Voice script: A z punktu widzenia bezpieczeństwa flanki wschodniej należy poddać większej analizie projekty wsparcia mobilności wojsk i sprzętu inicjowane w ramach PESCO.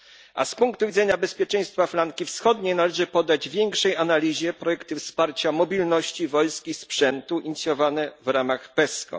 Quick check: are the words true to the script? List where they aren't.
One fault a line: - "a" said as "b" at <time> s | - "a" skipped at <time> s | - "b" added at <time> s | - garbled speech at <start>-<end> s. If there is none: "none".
none